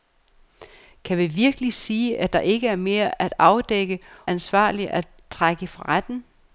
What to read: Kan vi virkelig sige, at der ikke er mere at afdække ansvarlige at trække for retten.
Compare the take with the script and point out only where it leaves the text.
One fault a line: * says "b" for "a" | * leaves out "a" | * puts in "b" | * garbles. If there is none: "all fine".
all fine